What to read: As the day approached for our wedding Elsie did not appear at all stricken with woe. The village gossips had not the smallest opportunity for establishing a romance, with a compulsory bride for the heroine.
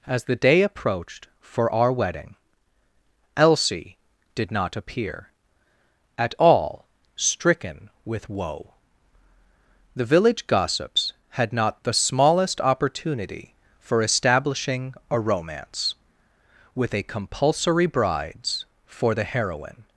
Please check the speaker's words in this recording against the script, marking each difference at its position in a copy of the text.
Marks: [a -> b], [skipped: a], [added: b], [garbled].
As the day approached for our wedding Elsie did not appear at all stricken with woe. The village gossips had not the smallest opportunity for establishing a romance, with a compulsory [bride -> brides] for the heroine.